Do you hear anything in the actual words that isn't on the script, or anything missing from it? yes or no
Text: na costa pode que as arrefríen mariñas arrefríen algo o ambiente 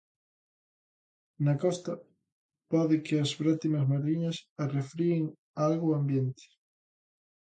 yes